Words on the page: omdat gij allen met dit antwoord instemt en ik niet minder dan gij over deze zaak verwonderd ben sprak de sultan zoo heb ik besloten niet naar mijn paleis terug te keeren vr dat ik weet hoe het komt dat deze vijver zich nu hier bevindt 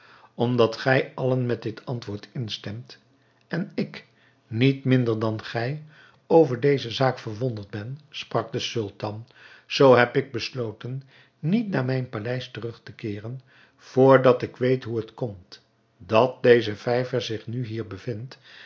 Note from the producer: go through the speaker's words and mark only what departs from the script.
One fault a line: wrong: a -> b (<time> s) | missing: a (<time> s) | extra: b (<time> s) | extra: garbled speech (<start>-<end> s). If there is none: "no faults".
no faults